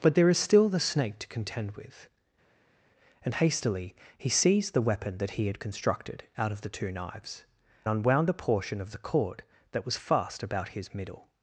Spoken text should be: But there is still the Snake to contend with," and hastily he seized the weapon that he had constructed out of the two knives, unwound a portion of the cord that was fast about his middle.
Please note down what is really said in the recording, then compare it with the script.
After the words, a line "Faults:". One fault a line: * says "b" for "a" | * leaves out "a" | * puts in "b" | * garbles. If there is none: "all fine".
But there is still the Snake to contend with," and hastily he seized the weapon that he had constructed out of the two knives, unwound a portion of the cord that was fast about his middle.
Faults:
all fine